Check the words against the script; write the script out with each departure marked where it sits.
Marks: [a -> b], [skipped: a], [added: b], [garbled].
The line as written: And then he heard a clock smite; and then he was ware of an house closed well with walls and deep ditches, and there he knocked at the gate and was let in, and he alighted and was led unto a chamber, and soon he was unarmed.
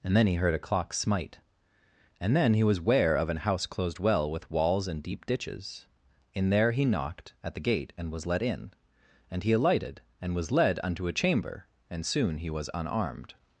And then he heard a clock smite; and then he was ware of an house closed well with walls and deep ditches, [and -> in] there he knocked at the gate and was let in, and he alighted and was led unto a chamber, and soon he was unarmed.